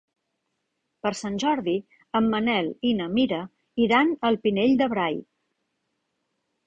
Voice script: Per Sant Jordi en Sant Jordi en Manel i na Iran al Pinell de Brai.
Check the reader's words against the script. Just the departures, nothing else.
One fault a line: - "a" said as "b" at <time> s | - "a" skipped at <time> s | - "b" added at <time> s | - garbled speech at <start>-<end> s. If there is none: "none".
- "Sant Jordi en" skipped at 2.3 s
- "Mira" added at 3.2 s